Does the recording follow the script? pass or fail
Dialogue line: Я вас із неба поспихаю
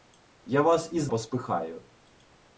fail